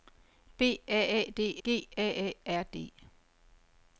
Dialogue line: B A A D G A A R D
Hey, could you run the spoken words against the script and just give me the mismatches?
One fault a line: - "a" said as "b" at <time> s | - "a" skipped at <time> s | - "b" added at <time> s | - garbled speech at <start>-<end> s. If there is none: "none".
none